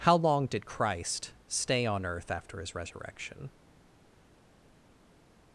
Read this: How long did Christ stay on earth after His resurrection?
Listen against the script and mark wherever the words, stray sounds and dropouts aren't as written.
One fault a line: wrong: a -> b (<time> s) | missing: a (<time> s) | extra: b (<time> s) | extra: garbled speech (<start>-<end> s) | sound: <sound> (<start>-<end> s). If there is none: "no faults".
no faults